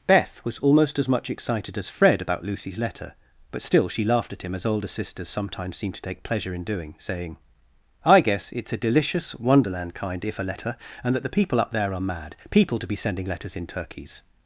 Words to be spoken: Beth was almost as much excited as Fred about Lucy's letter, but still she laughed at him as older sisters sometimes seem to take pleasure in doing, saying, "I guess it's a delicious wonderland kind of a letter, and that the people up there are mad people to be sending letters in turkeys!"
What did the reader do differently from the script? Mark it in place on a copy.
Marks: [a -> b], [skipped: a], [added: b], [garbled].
Beth was almost as much excited as Fred about Lucy's letter, but still she laughed at him as older sisters sometimes seem to take pleasure in doing, saying, "I guess it's a delicious wonderland kind [of -> if] a letter, and that the people up there are mad people to be sending letters in turkeys!"